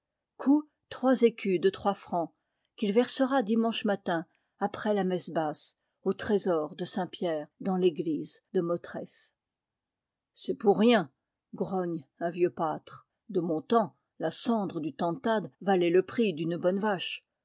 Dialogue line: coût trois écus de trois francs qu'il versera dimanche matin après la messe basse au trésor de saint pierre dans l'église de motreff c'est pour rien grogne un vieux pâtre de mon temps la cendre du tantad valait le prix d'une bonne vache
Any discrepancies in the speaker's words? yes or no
no